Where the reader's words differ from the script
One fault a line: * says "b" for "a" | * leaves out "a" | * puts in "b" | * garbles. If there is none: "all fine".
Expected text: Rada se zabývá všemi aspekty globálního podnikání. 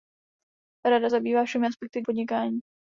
* leaves out "se"
* leaves out "globálního"